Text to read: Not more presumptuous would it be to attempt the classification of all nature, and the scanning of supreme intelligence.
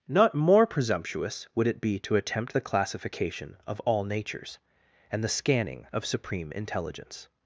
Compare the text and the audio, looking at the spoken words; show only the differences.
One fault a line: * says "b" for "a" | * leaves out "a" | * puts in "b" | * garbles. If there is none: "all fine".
* says "natures" for "nature"